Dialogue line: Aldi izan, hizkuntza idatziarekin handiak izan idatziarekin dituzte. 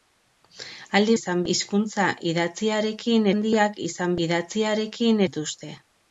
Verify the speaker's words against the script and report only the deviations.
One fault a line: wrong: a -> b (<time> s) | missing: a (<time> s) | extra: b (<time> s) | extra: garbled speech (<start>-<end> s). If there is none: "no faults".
no faults